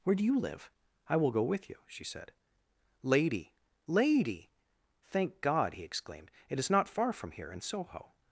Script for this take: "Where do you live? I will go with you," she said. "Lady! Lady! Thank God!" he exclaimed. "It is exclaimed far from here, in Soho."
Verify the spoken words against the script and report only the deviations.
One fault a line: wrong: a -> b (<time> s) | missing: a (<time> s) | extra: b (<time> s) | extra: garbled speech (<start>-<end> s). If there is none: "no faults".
wrong: exclaimed -> not (6.7 s)